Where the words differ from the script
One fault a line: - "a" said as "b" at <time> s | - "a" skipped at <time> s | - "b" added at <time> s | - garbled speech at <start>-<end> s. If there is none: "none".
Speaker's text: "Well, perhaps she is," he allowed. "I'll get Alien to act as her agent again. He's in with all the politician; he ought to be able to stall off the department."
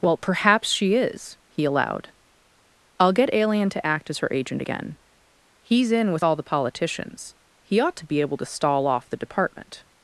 - "politician" said as "politicians" at 6.4 s